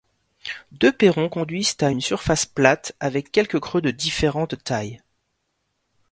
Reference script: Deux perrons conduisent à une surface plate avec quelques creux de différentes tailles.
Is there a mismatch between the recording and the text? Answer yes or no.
no